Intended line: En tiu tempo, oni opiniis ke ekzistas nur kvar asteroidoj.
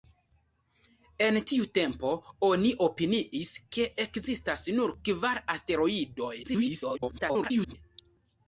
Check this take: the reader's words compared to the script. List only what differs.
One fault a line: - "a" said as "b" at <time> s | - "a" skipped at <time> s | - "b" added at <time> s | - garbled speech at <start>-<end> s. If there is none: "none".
- garbled speech at 6.4-7.8 s